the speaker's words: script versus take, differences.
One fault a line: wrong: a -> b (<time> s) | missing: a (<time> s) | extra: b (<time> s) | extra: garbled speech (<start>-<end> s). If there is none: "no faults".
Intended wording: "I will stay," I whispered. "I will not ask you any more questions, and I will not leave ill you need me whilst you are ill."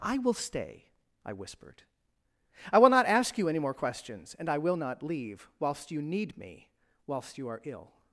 wrong: ill -> whilst (5.6 s)